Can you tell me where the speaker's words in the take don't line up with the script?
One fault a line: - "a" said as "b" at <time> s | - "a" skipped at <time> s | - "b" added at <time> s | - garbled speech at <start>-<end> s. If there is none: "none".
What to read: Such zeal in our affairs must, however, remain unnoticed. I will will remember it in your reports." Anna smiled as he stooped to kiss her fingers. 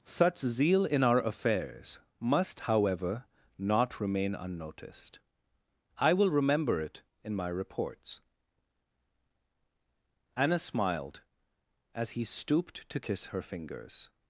- "not" added at 3.6 s
- "will" skipped at 6.3 s
- "your" said as "my" at 7.4 s